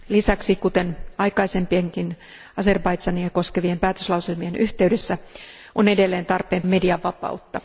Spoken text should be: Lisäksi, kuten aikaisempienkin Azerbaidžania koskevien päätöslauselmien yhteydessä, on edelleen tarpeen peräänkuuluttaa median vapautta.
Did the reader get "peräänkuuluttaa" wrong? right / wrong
wrong